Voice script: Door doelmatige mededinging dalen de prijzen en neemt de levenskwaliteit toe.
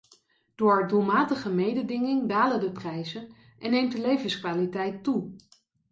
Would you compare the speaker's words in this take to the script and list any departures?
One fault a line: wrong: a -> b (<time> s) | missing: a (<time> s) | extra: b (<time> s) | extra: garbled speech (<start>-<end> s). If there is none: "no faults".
no faults